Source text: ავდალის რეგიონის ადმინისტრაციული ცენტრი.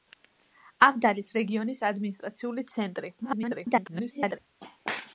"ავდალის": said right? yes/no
yes